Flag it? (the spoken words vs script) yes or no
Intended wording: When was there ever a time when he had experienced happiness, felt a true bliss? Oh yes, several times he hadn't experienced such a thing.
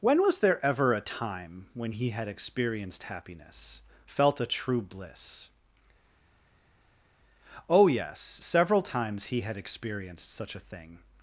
yes